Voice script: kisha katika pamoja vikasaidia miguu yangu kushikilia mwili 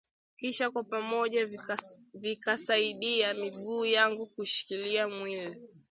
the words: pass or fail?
fail